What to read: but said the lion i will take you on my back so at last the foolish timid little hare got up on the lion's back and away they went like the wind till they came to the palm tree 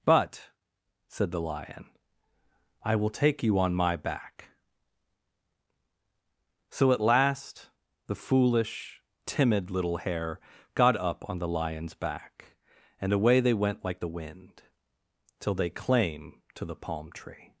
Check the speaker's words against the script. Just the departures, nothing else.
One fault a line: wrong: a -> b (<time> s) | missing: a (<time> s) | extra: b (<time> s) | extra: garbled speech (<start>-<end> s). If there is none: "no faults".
wrong: came -> claim (15.7 s)